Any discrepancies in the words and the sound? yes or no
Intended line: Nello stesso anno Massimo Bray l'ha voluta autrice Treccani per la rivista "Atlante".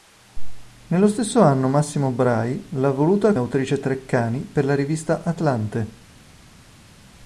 no